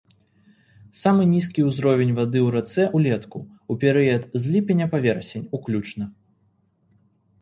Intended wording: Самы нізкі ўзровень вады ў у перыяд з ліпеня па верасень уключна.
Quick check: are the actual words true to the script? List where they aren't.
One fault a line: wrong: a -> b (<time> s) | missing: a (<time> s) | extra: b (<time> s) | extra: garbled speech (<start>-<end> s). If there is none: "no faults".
extra: рацэ ўлетку (2.5 s)